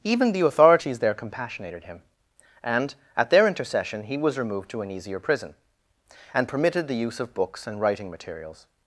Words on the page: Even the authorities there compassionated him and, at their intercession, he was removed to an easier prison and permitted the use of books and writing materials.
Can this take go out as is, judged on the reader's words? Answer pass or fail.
pass